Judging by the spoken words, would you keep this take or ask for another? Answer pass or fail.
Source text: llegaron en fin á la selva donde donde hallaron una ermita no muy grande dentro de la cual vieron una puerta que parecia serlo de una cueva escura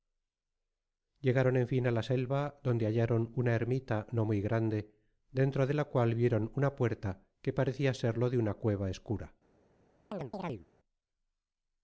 fail